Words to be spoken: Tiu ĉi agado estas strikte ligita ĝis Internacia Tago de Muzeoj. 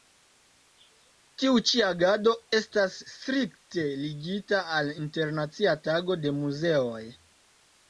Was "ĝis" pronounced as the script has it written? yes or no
no